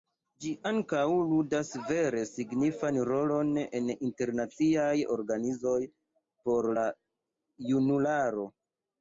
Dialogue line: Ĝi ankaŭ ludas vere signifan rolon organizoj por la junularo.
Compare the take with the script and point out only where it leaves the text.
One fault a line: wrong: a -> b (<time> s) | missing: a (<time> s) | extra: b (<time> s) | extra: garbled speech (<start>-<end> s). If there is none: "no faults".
extra: en internaciaj (3.8 s)